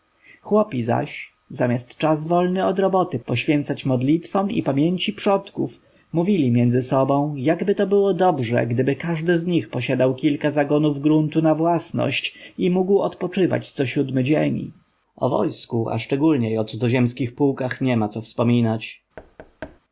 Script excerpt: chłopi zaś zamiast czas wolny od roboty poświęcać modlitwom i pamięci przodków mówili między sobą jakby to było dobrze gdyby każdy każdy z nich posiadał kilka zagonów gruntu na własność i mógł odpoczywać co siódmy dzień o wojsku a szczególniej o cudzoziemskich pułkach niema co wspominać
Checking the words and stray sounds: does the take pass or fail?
fail